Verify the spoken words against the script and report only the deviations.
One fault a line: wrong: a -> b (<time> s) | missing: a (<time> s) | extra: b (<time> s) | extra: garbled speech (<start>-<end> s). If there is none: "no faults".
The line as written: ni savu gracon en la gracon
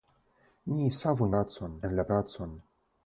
no faults